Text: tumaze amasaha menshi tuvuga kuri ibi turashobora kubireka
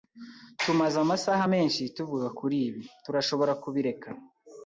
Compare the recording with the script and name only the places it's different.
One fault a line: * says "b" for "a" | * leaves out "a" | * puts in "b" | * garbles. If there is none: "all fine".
all fine